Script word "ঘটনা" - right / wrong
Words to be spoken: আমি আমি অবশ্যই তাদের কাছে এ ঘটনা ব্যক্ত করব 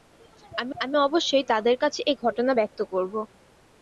right